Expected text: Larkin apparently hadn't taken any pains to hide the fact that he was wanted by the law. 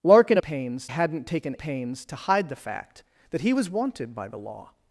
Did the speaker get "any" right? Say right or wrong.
wrong